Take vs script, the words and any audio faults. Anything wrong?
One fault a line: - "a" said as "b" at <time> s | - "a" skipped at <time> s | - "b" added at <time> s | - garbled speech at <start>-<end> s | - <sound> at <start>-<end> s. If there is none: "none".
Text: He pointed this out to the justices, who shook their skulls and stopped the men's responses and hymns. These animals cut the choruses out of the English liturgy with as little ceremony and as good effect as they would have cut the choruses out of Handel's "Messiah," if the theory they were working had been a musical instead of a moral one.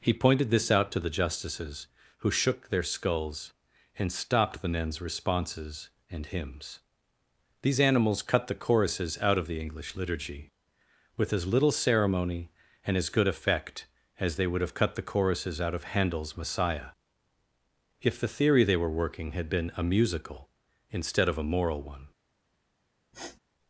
- sniff at 23.1-23.4 s